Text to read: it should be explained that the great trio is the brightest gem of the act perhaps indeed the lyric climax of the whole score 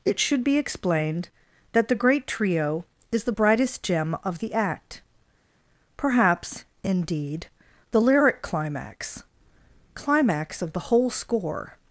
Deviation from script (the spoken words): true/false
true